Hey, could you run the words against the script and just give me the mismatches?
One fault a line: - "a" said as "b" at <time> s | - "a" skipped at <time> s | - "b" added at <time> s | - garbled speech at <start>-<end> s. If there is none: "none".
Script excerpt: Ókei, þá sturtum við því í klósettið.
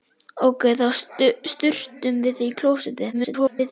- garbled speech at 3.1-3.7 s